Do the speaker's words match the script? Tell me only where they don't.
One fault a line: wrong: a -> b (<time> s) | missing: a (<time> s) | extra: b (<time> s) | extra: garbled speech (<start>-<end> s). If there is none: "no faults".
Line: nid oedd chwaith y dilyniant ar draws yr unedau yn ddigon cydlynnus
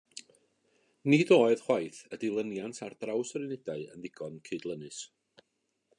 no faults